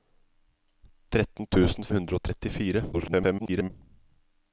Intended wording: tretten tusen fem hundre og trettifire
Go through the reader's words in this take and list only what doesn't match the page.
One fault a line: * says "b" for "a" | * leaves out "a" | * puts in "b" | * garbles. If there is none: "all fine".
* leaves out "fem"
* garbles